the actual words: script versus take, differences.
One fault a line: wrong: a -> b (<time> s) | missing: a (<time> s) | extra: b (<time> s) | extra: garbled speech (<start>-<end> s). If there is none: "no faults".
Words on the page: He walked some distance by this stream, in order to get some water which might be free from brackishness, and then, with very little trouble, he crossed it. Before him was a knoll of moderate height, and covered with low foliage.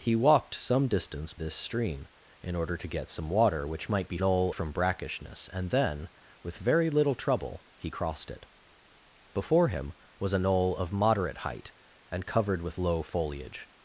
missing: by (1.4 s)
wrong: free -> knoll (4.2 s)